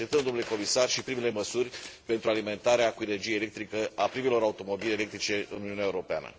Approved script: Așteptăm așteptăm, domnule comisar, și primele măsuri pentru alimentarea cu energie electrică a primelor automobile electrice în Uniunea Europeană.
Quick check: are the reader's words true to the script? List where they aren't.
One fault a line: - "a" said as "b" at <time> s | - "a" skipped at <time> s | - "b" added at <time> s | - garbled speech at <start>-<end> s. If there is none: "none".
- "așteptăm" skipped at 0.2 s